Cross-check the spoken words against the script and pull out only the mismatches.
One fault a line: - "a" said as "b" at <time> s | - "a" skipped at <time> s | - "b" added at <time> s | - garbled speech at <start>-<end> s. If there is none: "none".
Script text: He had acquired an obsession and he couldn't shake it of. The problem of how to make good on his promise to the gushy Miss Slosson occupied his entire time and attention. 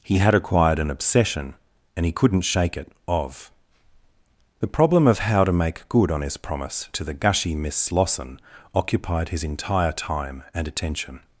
none